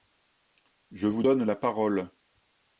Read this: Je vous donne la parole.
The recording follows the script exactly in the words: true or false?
true